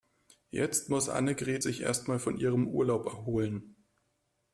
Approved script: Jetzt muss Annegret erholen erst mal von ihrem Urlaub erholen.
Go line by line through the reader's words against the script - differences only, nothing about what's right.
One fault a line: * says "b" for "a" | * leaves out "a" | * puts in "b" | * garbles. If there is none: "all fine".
* says "sich" for "erholen"